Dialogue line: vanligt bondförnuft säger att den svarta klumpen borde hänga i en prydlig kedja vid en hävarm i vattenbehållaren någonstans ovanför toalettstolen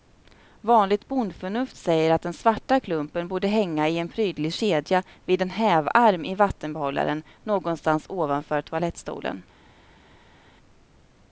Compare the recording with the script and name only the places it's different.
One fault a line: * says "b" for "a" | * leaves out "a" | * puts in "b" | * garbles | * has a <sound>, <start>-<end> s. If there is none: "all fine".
all fine